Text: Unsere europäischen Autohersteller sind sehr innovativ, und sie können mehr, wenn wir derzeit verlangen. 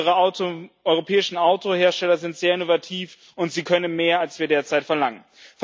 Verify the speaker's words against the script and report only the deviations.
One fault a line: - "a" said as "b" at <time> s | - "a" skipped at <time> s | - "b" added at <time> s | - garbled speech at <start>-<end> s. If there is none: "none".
- "wenn" said as "als" at 4.2 s